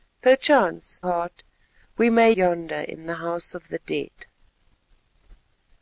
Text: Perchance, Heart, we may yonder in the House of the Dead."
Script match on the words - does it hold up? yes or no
yes